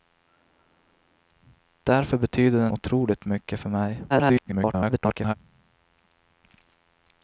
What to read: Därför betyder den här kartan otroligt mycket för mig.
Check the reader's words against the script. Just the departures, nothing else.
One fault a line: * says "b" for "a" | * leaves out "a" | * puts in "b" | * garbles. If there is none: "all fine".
* leaves out "här kartan"
* garbles